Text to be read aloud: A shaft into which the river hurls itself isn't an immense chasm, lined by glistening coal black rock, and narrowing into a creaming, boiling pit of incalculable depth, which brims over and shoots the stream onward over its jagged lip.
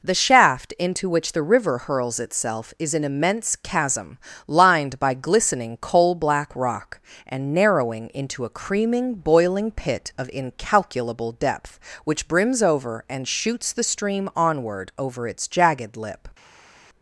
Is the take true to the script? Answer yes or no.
no